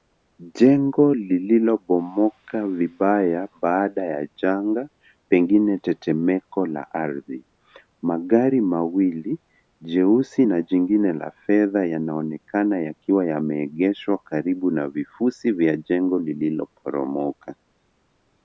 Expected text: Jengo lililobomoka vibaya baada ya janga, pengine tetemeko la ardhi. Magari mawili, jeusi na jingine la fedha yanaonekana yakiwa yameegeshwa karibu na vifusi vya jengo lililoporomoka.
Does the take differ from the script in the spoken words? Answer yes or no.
no